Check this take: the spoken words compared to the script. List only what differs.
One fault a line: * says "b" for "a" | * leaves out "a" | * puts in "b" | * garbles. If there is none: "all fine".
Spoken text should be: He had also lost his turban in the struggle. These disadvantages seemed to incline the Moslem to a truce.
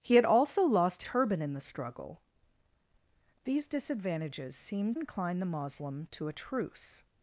* leaves out "his"
* leaves out "to"